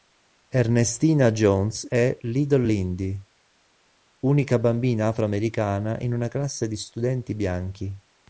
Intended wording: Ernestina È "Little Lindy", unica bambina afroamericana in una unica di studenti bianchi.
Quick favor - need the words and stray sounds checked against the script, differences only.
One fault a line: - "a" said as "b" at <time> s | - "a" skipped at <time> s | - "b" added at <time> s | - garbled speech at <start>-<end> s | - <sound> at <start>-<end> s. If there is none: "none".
- "Jones" added at 1.3 s
- "unica" said as "classe" at 6.3 s